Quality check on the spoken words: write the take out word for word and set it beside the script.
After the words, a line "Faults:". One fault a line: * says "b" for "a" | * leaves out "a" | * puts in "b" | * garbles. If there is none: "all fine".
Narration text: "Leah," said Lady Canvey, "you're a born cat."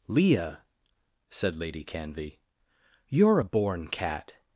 "Leah," said Lady Canvey, "you're a born cat."
Faults:
all fine